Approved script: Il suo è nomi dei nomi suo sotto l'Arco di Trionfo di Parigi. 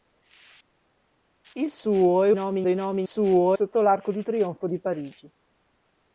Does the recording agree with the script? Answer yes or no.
yes